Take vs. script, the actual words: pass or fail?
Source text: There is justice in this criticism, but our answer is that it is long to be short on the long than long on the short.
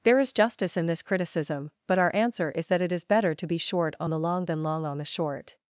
fail